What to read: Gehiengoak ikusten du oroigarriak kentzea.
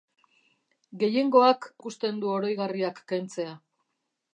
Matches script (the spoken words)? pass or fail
pass